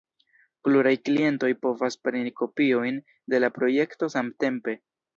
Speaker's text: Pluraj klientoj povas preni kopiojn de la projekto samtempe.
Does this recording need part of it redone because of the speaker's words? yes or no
no